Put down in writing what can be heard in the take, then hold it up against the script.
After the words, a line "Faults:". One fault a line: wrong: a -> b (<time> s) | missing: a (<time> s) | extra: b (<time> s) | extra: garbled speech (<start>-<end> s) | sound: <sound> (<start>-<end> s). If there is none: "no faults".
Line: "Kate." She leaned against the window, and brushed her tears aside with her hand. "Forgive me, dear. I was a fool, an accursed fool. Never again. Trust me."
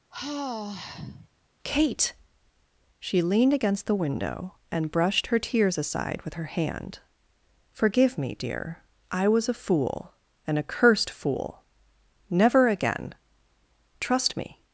"Kate." She leaned against the window, and brushed her tears aside with her hand. "Forgive me, dear. I was a fool, an accursed fool. Never again. Trust me."
Faults:
sound: sigh (0.1-1.3 s)